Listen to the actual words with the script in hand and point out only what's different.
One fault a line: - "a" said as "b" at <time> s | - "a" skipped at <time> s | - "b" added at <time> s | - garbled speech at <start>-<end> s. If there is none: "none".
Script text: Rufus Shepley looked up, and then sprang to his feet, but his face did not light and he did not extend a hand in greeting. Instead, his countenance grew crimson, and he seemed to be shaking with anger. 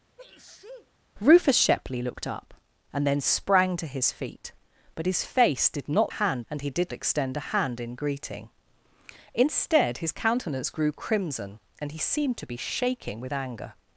- "light" said as "hand" at 6.1 s
- "not" skipped at 6.9 s